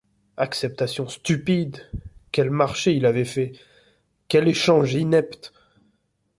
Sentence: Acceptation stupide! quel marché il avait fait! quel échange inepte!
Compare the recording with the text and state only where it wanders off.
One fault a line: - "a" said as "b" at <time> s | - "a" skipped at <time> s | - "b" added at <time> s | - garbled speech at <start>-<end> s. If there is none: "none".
none